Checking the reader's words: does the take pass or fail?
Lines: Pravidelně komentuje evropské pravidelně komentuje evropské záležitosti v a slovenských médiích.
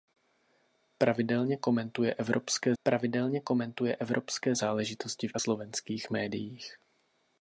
pass